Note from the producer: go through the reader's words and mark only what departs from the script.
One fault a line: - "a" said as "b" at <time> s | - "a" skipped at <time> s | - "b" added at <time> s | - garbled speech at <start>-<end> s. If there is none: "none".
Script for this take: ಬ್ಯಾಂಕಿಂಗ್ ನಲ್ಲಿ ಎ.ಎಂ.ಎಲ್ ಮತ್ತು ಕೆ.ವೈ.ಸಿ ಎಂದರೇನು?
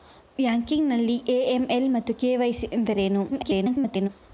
- garbled speech at 3.3-4.1 s